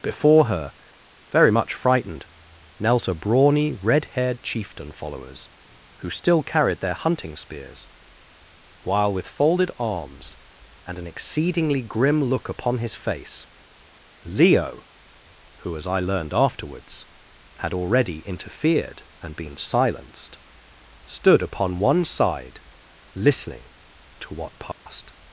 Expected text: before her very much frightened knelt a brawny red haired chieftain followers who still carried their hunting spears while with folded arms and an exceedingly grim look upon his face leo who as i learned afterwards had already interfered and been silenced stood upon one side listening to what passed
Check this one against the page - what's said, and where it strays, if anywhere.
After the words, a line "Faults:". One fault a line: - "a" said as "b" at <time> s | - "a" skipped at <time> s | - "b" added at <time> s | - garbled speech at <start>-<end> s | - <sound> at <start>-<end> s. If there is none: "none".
before her very much frightened knelt a brawny red haired chieftain followers who still carried their hunting spears while with folded arms and an exceedingly grim look upon his face leo who as i learned afterwards had already interfered and been silenced stood upon one side listening to what passed
Faults:
- dropout at 24.7-24.9 s